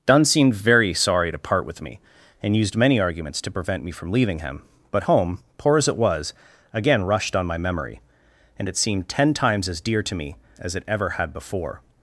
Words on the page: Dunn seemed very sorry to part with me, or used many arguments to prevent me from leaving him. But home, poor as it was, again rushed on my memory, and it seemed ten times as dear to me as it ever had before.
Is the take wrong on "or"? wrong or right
wrong